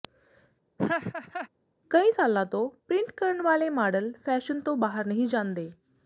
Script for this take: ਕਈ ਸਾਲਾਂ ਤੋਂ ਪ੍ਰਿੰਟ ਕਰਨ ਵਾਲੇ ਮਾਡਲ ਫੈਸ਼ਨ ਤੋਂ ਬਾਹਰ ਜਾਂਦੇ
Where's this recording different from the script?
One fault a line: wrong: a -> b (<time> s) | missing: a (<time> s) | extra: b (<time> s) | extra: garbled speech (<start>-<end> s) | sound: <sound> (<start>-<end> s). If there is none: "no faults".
sound: laugh (0.8-1.5 s)
extra: ਨਹੀਂ (5.1 s)